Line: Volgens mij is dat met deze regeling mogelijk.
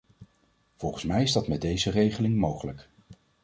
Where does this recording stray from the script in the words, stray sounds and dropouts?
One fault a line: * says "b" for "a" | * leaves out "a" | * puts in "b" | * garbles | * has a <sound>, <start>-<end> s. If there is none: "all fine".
all fine